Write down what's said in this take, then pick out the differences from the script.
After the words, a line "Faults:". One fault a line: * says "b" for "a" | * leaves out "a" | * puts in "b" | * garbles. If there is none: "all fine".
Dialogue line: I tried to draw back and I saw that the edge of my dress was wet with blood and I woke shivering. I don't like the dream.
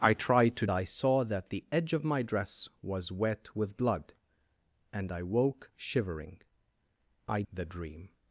I tried to I saw that the edge of my dress was wet with blood and I woke shivering. I the dream.
Faults:
* leaves out "draw back and"
* leaves out "don't like"